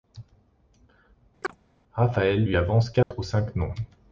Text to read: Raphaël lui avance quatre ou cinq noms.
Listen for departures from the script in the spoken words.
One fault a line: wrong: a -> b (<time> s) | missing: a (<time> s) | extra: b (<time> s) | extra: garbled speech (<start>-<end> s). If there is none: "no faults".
no faults